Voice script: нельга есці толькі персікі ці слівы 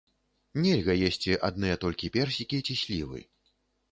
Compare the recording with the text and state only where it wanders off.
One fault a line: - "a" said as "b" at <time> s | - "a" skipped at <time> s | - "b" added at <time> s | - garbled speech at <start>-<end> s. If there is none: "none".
- "адныя" added at 1.5 s